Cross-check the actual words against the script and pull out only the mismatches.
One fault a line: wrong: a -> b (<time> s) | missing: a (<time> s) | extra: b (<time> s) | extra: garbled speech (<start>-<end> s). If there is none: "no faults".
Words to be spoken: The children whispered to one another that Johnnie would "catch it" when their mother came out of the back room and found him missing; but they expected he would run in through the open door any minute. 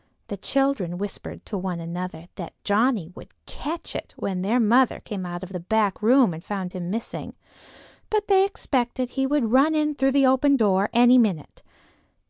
no faults